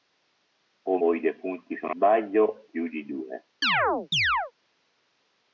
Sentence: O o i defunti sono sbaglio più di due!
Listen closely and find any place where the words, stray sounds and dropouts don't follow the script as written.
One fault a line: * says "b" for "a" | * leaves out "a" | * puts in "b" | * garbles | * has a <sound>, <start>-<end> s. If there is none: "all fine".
* has a chirp, 3.6-4.5 s